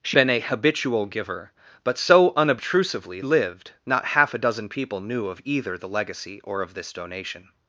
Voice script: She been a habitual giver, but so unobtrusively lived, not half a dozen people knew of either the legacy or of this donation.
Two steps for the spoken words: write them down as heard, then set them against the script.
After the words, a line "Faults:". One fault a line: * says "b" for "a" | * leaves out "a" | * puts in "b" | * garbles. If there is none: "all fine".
She been a habitual giver, but so unobtrusively lived, not half a dozen people knew of either the legacy or of this donation.
Faults:
all fine